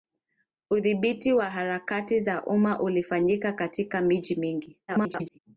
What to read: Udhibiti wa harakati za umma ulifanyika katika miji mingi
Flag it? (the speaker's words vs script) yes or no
yes